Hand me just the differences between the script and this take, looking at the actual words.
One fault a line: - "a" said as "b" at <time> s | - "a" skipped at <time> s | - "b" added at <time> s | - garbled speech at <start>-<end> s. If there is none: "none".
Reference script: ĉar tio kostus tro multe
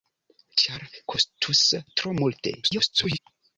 - "tio" skipped at 0.8 s
- garbled speech at 2.6-3.2 s